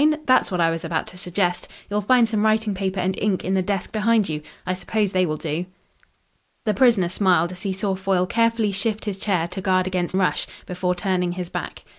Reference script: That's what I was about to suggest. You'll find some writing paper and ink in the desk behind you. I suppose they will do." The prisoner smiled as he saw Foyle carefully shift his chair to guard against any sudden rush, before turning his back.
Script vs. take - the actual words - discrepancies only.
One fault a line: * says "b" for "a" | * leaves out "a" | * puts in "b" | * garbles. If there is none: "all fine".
* leaves out "any sudden"